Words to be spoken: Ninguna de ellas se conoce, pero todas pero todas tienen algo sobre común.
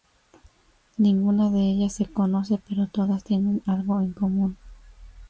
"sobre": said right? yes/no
no